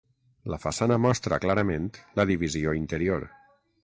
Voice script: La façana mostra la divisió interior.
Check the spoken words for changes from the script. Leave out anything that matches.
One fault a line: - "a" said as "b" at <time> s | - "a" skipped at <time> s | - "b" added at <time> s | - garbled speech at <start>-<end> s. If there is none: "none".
- "clarament" added at 1.4 s